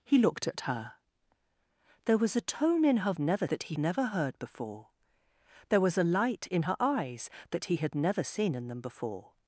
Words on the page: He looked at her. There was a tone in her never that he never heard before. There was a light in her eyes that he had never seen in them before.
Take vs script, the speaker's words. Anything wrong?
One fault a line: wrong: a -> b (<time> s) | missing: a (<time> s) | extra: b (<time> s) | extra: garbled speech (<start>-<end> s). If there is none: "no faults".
no faults